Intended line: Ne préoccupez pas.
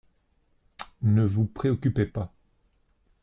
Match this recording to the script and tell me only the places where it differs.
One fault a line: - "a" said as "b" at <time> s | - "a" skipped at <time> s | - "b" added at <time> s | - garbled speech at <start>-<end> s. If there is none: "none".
- "vous" added at 1.2 s